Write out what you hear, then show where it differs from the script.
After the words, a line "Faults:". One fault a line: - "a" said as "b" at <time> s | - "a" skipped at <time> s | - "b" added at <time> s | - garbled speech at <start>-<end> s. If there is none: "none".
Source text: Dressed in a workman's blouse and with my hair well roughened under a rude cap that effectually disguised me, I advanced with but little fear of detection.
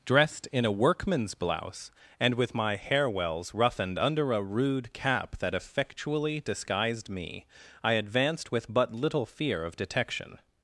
Dressed in a workman's blouse and with my hair wells roughened under a rude cap that effectually disguised me, I advanced with but little fear of detection.
Faults:
- "well" said as "wells" at 3.1 s